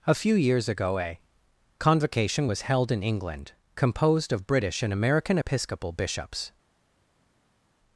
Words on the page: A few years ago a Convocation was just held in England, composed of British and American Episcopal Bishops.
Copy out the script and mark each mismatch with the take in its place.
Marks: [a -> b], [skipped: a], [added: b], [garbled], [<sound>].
A few years ago a Convocation was [skipped: just] held in England, composed of British and American Episcopal Bishops.